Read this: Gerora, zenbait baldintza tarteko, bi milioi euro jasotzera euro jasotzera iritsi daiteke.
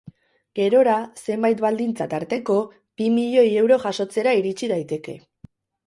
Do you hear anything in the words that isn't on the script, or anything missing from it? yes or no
yes